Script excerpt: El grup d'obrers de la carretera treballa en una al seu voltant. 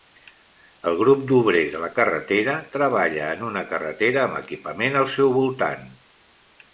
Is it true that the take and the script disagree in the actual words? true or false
true